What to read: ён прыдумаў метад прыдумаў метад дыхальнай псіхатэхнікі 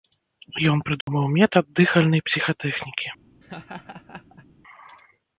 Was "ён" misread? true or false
false